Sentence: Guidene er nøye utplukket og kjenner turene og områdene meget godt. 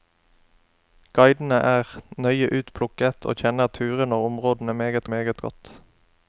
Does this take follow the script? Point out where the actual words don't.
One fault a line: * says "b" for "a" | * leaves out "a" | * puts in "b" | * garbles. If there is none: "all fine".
* puts in "meget"